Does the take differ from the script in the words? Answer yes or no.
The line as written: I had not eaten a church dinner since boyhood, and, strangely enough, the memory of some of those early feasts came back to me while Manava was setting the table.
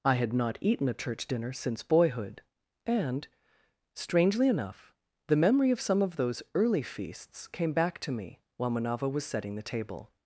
no